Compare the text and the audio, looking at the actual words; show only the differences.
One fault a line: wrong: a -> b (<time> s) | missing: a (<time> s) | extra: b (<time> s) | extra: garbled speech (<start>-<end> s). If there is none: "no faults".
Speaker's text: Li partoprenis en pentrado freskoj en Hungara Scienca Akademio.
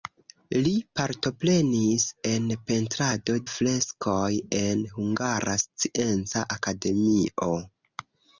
no faults